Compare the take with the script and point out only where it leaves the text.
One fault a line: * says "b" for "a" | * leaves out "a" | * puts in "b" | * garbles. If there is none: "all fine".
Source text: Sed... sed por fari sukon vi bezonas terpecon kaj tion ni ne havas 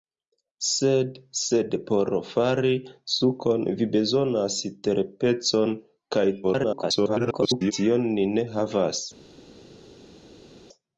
* garbles